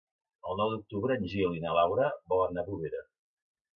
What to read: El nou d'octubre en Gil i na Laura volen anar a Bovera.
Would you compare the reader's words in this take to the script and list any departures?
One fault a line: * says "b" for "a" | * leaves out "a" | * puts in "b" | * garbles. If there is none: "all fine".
all fine